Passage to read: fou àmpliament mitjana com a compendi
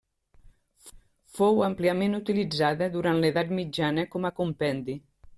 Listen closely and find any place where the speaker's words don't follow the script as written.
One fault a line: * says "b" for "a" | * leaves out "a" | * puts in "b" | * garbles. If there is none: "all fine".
* puts in "utilitzada durant l'edat"